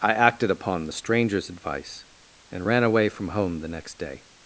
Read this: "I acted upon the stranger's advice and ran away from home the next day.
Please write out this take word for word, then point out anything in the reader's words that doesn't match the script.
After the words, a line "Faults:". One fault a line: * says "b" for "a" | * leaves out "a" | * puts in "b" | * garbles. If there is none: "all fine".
"I acted upon the stranger's advice and ran away from home the next day.
Faults:
all fine